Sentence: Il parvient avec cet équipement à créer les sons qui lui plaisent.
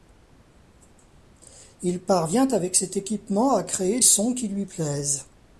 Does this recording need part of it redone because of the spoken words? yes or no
yes